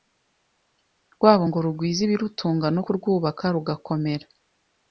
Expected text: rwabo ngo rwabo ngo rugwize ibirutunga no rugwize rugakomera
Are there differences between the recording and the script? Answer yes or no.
yes